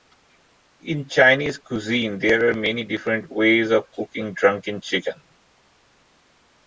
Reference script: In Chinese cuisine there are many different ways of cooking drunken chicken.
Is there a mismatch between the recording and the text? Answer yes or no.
no